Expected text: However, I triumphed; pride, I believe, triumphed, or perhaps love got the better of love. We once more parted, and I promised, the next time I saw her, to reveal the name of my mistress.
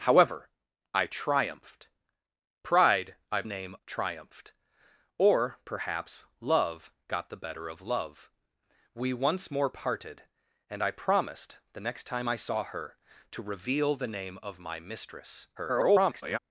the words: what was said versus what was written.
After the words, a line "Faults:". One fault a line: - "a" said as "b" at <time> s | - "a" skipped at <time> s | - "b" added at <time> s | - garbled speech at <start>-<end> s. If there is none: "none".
However, I triumphed; pride, I name, triumphed, or perhaps love got the better of love. We once more parted, and I promised, the next time I saw her, to reveal the name of my mistress. [garbled]
Faults:
- "believe" said as "name" at 3.4 s
- garbled speech at 15.6-16.4 s